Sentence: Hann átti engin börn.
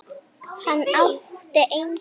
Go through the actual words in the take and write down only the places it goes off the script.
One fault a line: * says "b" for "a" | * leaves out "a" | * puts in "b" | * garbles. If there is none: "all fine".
all fine